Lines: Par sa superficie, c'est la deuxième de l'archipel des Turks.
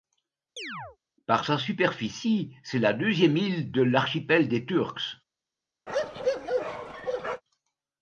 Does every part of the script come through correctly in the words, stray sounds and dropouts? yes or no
no